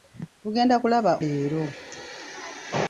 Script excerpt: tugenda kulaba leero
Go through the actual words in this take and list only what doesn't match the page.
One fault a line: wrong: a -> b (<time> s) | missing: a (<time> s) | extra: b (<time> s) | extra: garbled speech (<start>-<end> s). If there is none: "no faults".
no faults